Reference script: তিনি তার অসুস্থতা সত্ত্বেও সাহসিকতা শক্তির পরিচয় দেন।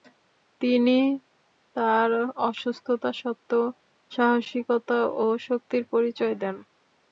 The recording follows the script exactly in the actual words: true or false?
false